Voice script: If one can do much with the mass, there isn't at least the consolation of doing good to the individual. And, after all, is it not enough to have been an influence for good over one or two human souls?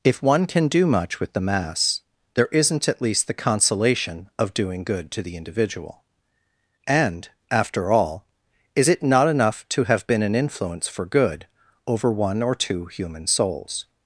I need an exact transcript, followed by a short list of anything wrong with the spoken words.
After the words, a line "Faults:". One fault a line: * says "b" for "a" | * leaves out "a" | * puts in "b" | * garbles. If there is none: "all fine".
If one can do much with the mass, there isn't at least the consolation of doing good to the individual. And, after all, is it not enough to have been an influence for good over one or two human souls?
Faults:
all fine